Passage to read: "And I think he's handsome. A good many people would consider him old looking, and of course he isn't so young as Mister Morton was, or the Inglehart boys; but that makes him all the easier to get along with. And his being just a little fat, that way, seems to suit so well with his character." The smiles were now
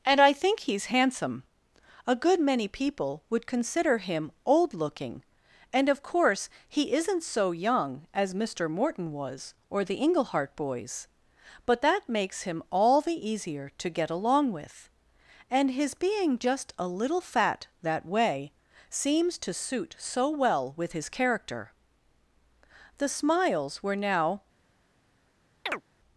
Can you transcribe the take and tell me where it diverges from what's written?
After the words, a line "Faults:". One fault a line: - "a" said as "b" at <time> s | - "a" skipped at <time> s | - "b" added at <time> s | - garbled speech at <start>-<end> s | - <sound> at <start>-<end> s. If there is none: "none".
"And I think he's handsome. A good many people would consider him old looking, and of course he isn't so young as Mister Morton was, or the Inglehart boys; but that makes him all the easier to get along with. And his being just a little fat, that way, seems to suit so well with his character." The smiles were now
Faults:
- chirp at 25.7-25.8 s